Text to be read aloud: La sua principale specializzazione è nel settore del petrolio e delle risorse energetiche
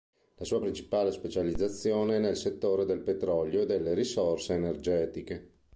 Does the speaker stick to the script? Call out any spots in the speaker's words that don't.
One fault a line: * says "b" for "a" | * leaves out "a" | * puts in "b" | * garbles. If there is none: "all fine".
all fine